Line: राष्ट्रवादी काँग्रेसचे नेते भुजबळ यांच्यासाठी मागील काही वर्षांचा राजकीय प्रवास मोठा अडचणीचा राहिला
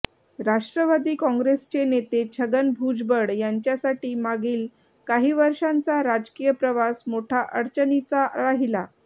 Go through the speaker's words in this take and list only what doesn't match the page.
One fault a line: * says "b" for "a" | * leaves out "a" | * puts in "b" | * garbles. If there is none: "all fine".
* puts in "छगन"